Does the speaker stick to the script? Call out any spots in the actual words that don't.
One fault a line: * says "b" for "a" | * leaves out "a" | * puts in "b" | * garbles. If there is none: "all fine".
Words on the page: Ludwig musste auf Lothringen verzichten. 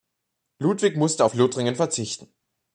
all fine